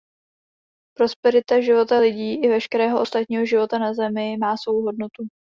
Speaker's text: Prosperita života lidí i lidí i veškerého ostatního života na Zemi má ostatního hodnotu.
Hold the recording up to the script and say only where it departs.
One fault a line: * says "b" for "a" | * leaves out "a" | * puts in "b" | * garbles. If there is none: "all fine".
* leaves out "lidí i"
* says "svou" for "ostatního"